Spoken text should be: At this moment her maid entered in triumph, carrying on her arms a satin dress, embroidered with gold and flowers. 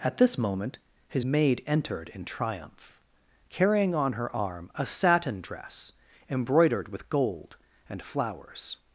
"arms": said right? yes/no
no